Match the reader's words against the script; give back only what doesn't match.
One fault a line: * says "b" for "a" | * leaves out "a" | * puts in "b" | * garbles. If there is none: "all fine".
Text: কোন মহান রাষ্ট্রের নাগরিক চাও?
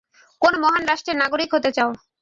* puts in "হতে"